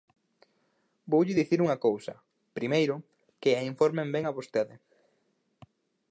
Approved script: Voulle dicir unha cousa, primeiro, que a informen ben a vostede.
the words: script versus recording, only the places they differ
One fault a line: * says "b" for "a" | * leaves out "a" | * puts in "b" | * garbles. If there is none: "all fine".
all fine